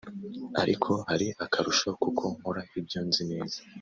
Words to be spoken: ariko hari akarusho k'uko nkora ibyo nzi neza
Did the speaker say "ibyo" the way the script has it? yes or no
yes